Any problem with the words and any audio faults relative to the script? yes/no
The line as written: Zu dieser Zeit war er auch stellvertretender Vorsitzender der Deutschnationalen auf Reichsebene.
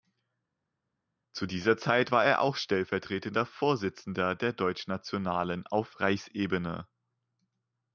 no